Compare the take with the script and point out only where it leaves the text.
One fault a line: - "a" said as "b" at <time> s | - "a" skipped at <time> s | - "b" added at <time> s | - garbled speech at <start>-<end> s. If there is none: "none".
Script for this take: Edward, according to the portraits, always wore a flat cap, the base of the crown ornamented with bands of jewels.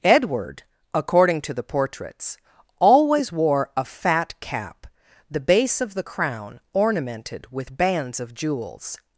- "flat" said as "fat" at 3.9 s